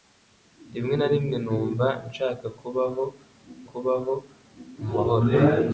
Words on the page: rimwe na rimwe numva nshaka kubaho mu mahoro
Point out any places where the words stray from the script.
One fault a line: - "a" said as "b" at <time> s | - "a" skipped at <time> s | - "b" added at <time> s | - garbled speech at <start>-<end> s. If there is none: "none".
- "kubaho" added at 3.7 s